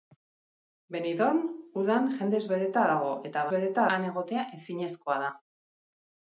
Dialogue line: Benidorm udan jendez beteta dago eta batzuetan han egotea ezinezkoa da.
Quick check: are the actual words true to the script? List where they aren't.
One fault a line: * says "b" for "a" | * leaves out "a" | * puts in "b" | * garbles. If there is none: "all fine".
* says "beteta" for "batzuetan"